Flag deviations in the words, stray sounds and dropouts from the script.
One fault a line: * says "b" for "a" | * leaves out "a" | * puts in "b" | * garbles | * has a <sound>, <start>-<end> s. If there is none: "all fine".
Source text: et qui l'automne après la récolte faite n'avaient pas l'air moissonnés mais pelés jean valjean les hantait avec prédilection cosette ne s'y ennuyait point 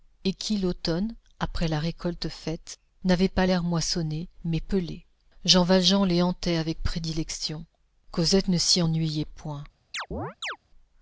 * has a chirp, 9.9-10.6 s